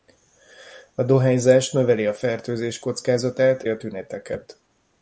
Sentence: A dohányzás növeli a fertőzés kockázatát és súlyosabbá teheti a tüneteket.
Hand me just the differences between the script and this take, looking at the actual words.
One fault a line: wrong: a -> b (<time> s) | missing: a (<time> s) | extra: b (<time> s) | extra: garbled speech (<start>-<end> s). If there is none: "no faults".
missing: és súlyosabbá teheti (3.6 s)